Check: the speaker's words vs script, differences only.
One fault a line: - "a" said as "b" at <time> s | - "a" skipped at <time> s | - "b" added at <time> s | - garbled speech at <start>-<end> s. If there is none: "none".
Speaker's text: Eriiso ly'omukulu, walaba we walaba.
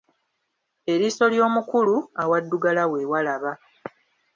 - "walaba" said as "awaddugala" at 2.2 s